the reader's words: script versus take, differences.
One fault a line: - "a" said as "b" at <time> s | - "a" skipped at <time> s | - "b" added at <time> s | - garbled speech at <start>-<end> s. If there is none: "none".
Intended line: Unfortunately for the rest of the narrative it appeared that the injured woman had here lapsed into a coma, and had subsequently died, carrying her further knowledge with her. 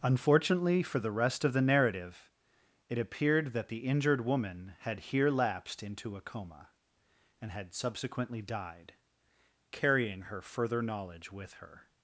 none